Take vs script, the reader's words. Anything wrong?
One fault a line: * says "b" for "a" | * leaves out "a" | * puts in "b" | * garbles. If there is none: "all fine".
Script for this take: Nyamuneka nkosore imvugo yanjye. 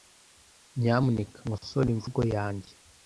all fine